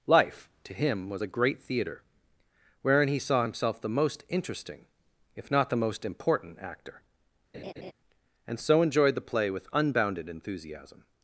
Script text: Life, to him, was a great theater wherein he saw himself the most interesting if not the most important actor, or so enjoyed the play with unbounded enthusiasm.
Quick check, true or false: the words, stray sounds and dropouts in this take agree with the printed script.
false